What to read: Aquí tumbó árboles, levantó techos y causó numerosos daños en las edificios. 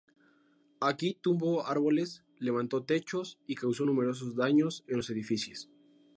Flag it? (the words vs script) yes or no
yes